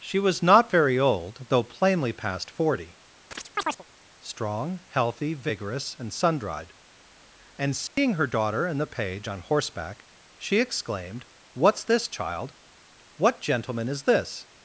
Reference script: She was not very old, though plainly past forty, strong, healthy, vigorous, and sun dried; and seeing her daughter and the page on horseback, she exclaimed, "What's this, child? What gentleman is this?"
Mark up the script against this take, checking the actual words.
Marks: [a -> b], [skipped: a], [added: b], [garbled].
She was not very old, though plainly past forty, strong, healthy, vigorous, and sun dried; and seeing her daughter and the page on horseback, she exclaimed, "What's this, child? What gentleman is this?"